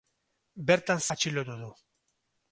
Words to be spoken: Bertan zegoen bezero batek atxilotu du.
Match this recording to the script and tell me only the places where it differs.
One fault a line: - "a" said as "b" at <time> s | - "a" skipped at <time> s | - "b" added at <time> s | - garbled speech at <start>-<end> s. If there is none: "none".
- "zegoen bezero batek" skipped at 1.0 s